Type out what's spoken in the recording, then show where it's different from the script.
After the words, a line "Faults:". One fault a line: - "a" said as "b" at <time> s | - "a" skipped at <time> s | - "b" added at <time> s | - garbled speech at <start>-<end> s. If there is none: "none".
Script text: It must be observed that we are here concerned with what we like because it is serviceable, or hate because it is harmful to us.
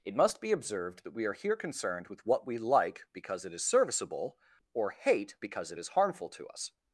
It must be observed that we are here concerned with what we like because it is serviceable, or hate because it is harmful to us.
Faults:
none